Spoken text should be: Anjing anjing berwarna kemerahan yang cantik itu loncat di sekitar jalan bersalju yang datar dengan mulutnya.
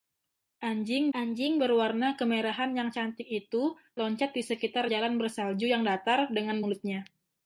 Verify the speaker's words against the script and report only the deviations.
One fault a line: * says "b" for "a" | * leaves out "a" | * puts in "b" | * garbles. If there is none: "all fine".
all fine